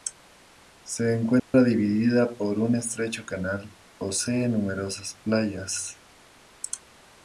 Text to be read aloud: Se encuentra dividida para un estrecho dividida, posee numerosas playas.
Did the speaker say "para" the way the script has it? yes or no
no